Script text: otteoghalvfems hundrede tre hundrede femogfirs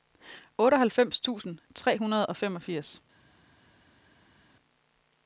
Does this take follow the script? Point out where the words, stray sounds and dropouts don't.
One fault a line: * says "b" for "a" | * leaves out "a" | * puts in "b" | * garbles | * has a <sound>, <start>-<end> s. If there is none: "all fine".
* says "tusind" for "hundrede"
* puts in "og"